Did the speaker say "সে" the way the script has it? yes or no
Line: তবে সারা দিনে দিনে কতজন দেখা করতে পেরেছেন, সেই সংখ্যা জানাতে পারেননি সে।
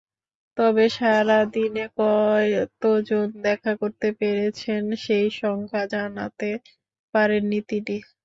no